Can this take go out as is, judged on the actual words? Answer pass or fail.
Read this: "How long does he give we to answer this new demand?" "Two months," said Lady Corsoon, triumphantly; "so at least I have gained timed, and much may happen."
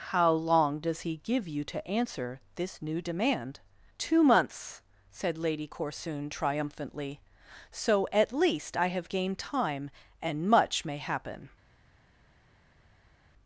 fail